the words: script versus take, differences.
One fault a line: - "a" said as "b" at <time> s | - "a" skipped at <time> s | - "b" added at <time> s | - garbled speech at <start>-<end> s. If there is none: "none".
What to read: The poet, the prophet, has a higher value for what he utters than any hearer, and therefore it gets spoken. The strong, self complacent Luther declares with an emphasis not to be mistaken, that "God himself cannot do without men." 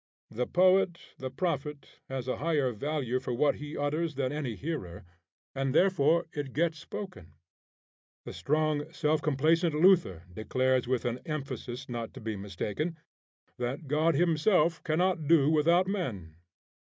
none